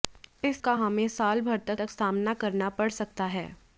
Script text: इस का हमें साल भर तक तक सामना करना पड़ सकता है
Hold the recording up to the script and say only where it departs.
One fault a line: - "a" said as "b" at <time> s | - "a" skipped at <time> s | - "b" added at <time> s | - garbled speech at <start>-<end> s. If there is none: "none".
none